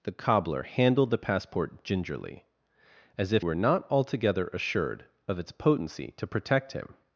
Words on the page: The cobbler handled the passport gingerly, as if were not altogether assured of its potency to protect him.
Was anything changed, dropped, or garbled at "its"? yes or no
no